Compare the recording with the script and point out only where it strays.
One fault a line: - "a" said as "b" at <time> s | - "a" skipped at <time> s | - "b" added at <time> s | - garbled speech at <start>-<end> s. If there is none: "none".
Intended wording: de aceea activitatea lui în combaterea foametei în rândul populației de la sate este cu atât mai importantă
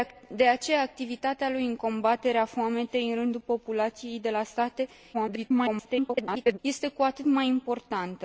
- garbled speech at 5.1-6.6 s